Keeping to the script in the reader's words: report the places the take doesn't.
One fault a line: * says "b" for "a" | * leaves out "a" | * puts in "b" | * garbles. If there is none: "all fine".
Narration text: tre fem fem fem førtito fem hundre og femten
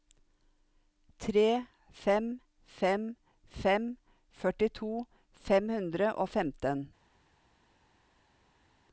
all fine